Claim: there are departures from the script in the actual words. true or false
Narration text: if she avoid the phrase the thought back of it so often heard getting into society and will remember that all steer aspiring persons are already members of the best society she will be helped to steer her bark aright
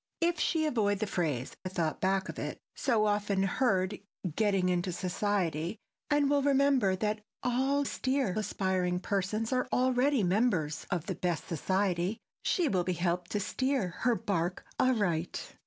false